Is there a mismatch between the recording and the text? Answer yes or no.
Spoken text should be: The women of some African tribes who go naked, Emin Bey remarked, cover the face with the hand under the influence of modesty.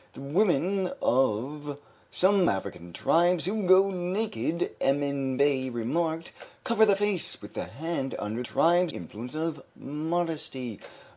yes